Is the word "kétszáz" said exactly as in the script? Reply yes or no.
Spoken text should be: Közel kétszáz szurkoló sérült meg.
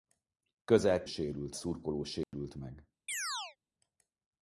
no